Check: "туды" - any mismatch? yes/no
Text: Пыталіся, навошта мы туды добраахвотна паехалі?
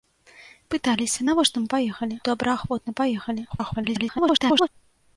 yes